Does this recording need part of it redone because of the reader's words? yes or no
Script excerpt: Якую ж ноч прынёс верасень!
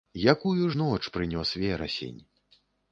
no